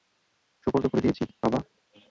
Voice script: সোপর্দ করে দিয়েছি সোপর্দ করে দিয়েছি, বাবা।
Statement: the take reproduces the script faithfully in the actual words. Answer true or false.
false